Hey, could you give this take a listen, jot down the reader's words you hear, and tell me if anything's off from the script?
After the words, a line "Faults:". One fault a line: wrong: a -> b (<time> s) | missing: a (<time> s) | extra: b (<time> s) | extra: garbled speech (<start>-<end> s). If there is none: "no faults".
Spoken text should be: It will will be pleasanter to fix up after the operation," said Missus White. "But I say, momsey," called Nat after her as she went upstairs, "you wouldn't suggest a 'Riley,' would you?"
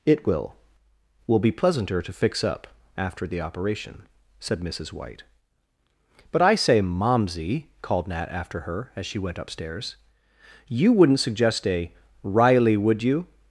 It will will be pleasanter to fix up after the operation," said Missus White. "But I say, momsey," called Nat after her as she went upstairs, "you wouldn't suggest a 'Riley,' would you?"
Faults:
no faults